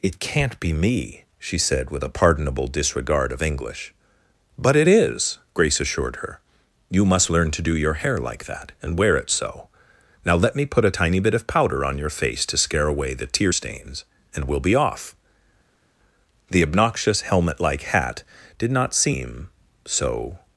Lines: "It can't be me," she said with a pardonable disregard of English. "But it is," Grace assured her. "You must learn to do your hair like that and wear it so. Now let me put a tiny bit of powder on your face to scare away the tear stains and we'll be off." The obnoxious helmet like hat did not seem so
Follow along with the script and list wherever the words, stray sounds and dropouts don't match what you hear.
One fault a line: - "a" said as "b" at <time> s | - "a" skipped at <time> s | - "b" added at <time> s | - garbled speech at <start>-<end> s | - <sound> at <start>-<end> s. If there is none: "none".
none